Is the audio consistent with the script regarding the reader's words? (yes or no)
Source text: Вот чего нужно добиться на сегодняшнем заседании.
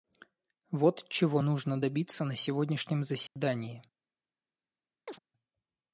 yes